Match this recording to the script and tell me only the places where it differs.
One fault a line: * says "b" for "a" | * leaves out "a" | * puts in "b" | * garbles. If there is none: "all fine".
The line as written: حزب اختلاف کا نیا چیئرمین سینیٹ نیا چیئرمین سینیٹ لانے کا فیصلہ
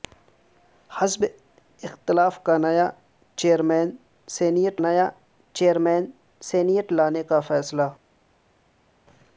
all fine